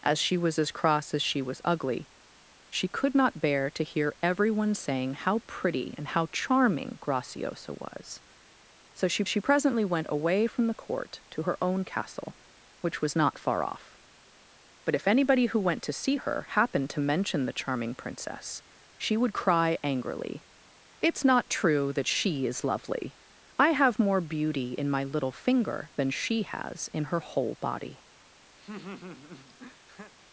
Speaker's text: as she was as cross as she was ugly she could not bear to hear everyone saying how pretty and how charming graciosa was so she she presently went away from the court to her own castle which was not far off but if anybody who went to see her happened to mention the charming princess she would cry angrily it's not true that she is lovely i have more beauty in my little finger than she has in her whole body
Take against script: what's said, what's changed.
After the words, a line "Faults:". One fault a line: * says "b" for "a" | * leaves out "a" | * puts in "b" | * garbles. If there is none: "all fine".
as she was as cross as she was ugly she could not bear to hear everyone saying how pretty and how charming graciosa was so she she presently went away from the court to her own castle which was not far off but if anybody who went to see her happened to mention the charming princess she would cry angrily it's not true that she is lovely i have more beauty in my little finger than she has in her whole body
Faults:
all fine